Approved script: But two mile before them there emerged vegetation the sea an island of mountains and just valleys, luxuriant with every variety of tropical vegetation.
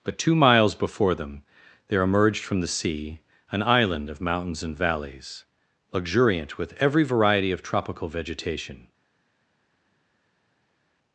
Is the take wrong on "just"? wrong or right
wrong